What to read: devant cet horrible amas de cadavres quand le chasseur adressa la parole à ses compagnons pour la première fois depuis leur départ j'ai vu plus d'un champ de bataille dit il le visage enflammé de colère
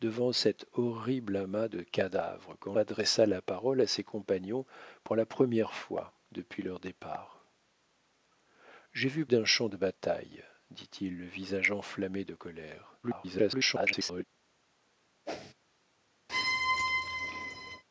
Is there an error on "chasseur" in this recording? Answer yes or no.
yes